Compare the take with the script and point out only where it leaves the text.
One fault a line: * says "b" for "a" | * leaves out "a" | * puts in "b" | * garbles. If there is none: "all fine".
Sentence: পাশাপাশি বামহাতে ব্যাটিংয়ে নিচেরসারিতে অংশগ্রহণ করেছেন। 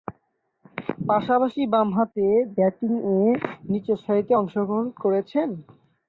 all fine